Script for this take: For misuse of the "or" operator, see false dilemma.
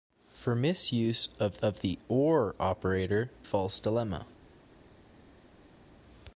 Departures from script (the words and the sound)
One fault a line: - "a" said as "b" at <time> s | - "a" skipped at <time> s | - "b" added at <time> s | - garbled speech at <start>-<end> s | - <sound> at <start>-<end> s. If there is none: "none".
- "of" added at 1.6 s
- "see" skipped at 3.3 s